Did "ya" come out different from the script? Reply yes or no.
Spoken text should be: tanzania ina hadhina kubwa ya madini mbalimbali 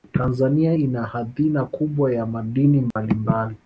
no